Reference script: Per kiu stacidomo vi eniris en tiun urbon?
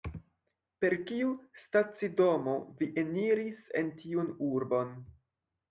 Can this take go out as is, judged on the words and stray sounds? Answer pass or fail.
pass